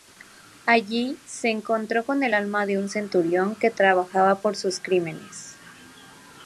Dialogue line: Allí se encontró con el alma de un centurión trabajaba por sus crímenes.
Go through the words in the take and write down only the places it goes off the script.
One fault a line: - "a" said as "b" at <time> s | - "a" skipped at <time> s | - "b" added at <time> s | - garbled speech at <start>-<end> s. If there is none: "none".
- "que" added at 3.6 s